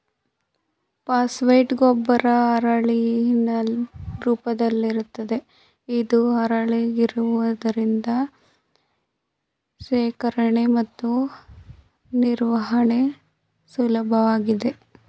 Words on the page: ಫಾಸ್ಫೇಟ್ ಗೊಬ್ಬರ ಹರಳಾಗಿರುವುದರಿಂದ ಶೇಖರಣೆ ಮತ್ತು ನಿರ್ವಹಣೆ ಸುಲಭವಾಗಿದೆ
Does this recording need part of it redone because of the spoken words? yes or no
yes